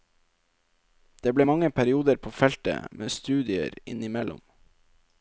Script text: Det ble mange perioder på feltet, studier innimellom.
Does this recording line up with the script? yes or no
no